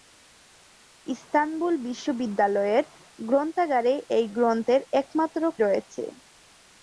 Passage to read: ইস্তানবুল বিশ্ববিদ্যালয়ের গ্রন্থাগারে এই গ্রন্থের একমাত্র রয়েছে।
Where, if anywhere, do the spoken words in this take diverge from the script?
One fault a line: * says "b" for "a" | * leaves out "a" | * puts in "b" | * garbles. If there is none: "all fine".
all fine